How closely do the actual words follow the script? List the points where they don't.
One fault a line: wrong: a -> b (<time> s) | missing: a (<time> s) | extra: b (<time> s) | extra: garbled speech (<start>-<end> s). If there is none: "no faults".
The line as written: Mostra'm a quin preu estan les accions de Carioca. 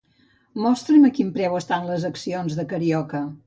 no faults